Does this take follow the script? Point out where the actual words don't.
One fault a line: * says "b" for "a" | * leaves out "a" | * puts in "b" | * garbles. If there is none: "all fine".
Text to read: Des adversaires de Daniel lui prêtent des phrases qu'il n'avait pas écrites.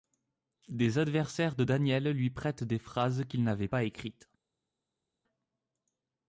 all fine